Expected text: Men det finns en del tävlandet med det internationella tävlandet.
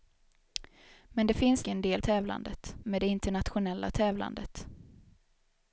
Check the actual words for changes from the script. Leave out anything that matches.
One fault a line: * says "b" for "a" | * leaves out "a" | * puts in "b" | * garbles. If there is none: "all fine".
all fine